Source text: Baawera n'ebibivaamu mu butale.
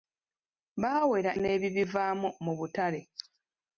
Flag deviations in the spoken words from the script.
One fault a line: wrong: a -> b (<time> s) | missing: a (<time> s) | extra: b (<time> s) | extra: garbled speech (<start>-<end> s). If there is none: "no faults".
no faults